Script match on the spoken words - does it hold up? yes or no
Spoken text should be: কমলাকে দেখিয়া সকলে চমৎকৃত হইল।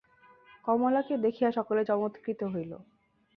yes